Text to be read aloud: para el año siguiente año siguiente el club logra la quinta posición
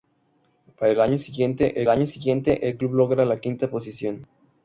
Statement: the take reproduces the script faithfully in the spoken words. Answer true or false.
true